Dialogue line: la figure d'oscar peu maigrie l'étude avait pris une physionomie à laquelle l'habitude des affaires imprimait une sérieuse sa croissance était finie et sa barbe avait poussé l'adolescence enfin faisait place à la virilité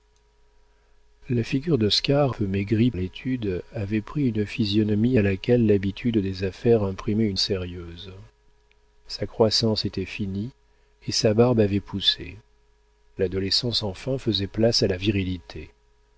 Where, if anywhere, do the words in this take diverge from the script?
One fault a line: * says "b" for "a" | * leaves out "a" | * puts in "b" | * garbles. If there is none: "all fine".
all fine